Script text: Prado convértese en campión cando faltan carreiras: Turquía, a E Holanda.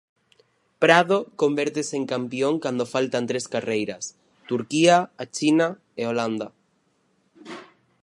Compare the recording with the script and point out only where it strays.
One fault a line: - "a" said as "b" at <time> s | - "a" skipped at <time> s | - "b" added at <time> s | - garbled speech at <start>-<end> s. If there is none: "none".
- "tres" added at 3.3 s
- "China" added at 5.3 s